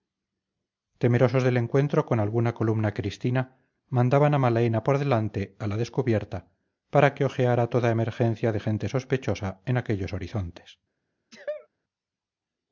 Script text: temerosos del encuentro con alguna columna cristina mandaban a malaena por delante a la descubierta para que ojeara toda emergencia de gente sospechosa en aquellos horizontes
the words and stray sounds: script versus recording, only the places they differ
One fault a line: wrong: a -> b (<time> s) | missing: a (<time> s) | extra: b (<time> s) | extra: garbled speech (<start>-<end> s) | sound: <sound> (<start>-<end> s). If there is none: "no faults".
sound: sneeze (11.3-11.7 s)